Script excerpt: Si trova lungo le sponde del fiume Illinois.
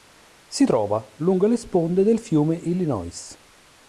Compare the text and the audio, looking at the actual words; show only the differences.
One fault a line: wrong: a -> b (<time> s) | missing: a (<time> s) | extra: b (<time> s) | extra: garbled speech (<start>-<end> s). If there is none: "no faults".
no faults